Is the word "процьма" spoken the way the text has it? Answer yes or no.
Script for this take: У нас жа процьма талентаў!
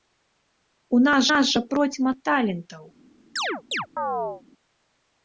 yes